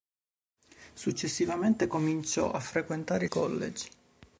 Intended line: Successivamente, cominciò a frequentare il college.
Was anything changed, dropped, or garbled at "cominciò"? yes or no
no